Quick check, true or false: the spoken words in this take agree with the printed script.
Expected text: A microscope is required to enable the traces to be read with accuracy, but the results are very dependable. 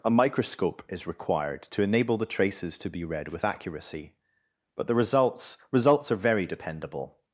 false